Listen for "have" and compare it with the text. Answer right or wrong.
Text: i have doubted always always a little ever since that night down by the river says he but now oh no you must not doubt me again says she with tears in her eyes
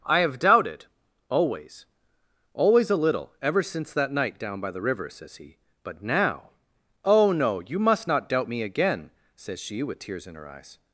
right